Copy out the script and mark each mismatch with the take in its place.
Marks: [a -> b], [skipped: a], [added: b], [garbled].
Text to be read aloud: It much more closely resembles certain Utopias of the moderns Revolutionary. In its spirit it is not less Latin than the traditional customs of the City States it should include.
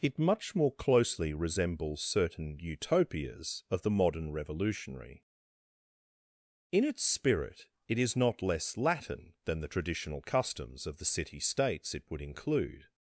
It much more closely resembles certain Utopias of the [moderns -> modern] Revolutionary. In its spirit it is not less Latin than the traditional customs of the City States it [should -> would] include.